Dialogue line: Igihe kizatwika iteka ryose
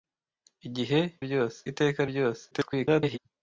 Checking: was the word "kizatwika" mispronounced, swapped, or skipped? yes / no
yes